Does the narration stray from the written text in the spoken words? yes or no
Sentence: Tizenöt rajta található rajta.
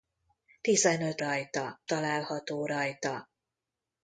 no